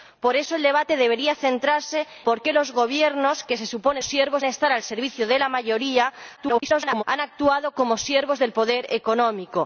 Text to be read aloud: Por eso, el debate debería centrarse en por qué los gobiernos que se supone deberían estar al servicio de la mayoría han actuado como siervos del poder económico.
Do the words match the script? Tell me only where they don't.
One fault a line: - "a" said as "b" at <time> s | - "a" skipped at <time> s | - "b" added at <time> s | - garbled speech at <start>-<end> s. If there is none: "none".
- "en" skipped at 2.0 s
- "deberían" said as "siervos" at 4.0 s
- garbled speech at 6.4-7.0 s